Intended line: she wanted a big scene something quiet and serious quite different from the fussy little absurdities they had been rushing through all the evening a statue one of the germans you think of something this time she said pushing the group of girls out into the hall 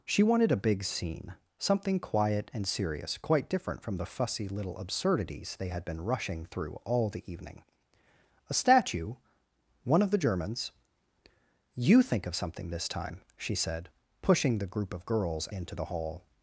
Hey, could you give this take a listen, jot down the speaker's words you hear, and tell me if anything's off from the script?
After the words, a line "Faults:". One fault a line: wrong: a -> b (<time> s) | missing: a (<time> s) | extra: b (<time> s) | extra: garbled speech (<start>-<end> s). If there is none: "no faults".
she wanted a big scene something quiet and serious quite different from the fussy little absurdities they had been rushing through all the evening a statue one of the germans you think of something this time she said pushing the group of girls into the hall
Faults:
missing: out (15.5 s)